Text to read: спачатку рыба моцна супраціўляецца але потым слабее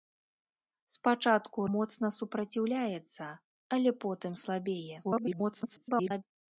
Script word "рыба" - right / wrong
wrong